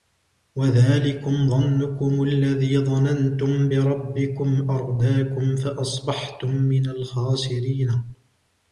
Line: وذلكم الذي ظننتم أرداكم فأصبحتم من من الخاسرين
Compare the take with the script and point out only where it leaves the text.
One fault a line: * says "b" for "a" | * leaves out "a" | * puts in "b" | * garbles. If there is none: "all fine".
* puts in "ظنكم"
* puts in "بربكم"
* leaves out "من"